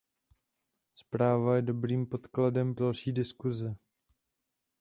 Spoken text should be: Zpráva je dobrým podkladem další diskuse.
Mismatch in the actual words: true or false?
false